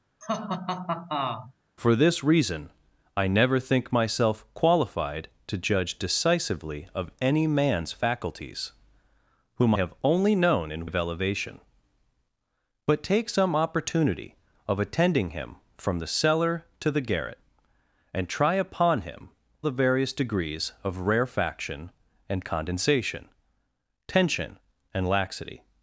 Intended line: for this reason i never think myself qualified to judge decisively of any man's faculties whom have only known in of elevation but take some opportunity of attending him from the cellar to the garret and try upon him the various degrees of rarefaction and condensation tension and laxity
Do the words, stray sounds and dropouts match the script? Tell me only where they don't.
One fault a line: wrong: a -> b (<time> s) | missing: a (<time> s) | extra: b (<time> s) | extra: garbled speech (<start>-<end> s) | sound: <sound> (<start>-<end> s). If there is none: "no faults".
sound: laugh (0.2-1.5 s)